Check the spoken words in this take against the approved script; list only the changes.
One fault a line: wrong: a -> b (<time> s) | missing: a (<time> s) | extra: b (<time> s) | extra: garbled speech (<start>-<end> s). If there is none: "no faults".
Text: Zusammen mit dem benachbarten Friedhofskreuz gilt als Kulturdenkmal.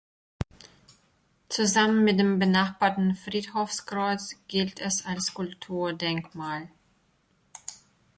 extra: es (4.8 s)